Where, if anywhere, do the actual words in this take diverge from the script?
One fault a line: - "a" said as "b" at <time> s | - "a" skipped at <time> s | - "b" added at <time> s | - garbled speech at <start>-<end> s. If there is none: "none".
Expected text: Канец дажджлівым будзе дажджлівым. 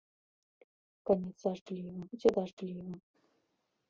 none